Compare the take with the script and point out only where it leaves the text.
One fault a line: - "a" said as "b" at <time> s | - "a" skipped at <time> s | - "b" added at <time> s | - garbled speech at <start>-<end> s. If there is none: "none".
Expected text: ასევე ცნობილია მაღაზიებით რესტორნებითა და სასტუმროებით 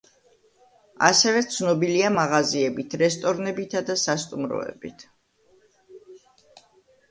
none